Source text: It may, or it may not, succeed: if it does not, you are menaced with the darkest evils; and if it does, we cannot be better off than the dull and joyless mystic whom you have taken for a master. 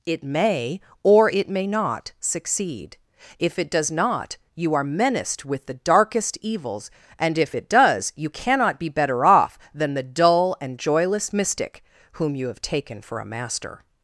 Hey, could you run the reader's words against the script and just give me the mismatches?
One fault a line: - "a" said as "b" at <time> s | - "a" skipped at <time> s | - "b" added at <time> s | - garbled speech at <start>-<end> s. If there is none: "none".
- "we" said as "you" at 8.2 s